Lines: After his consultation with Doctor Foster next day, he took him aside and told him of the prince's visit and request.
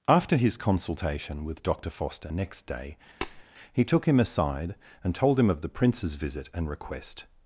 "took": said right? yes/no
yes